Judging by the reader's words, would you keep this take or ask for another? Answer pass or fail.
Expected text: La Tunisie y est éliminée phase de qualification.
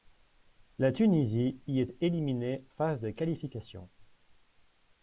pass